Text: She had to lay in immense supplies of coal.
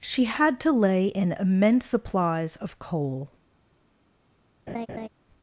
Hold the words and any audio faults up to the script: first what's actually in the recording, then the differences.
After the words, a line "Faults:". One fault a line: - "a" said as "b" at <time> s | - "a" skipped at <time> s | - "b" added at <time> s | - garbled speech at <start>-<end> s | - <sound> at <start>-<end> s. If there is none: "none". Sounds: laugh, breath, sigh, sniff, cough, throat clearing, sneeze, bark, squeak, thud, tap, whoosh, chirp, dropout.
She had to lay in immense supplies of coal.
Faults:
- laugh at 4.7-5.1 s